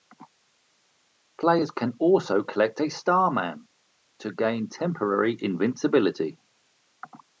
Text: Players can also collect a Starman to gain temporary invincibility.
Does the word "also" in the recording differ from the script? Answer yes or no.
no